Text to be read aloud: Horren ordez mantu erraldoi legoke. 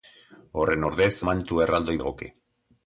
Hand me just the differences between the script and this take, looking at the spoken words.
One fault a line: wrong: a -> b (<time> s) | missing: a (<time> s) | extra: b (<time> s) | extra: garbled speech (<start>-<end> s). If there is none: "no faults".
no faults